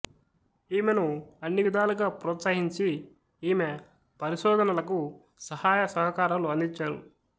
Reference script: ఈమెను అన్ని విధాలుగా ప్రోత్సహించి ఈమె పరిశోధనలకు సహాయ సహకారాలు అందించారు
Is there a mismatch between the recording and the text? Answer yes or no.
no